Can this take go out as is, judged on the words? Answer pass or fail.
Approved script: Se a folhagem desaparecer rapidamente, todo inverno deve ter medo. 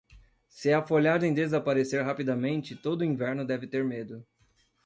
pass